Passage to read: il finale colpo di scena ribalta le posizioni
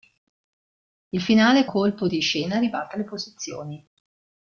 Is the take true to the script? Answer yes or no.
yes